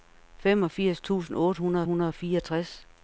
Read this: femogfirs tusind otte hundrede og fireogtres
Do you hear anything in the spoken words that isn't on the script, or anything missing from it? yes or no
yes